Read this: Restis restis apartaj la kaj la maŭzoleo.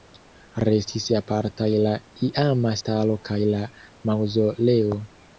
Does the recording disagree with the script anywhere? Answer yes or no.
yes